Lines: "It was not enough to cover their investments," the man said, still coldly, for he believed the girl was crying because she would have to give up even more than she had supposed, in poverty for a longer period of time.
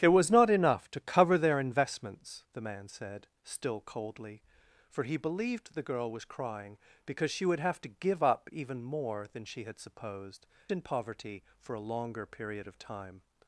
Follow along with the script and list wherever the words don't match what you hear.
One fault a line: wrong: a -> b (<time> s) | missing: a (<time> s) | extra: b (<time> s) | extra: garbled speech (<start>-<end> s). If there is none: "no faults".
no faults